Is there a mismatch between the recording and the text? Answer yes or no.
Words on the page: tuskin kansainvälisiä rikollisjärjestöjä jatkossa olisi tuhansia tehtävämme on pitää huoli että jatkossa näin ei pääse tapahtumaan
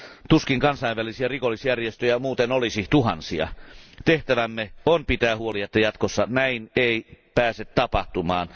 yes